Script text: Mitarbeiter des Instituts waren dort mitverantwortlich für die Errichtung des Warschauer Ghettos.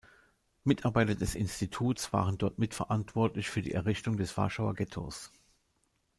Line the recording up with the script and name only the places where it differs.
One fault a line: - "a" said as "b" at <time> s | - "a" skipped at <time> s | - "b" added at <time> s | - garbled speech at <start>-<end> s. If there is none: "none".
none